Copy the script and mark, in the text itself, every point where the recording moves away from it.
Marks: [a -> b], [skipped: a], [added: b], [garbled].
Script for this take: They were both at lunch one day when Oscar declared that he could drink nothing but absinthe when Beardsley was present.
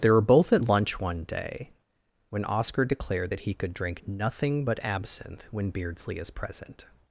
They were both at lunch one day when Oscar declared that he could drink nothing but absinthe when Beardsley [was -> is] present.